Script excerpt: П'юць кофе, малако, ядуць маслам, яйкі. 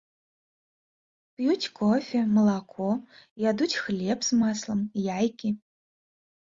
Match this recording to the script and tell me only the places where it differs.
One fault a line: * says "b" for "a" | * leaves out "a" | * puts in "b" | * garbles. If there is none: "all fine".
* puts in "хлеб з"